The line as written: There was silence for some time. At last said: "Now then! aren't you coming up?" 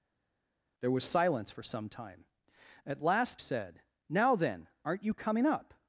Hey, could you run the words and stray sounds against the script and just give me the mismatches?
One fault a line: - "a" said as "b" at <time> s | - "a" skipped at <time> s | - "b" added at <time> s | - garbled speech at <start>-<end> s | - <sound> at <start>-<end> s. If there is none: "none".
none